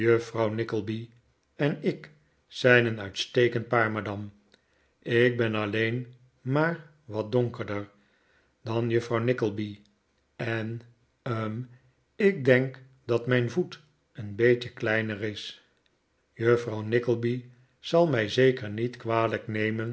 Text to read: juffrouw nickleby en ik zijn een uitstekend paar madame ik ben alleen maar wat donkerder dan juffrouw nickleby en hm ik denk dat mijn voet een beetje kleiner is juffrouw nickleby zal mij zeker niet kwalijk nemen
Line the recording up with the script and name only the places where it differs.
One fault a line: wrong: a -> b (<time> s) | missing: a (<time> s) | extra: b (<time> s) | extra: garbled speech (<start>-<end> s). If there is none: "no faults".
no faults